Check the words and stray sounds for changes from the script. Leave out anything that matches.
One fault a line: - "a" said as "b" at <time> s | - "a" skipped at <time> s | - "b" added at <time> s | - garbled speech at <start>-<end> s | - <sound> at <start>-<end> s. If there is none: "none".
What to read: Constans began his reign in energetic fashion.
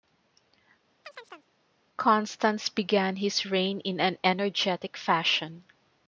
- chirp at 1.0-1.5 s
- "an" added at 4.0 s